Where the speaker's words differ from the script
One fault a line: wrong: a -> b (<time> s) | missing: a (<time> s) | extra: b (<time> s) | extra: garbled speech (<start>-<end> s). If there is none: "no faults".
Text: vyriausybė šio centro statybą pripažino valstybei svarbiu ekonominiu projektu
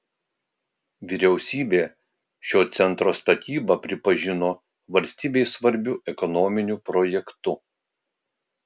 no faults